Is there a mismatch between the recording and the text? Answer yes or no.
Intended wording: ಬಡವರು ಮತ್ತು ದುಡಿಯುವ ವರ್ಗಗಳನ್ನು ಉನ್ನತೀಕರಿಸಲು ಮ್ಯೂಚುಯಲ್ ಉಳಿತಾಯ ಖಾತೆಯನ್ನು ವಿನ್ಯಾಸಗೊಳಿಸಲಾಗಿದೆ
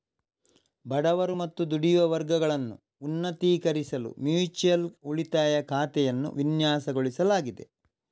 no